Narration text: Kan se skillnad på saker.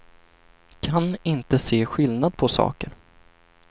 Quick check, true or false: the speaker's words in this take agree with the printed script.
false